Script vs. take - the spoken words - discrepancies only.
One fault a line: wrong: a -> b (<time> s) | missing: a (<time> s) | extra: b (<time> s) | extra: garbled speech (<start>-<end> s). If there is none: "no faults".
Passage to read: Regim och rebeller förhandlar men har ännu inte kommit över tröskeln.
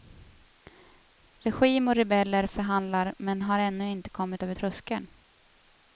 no faults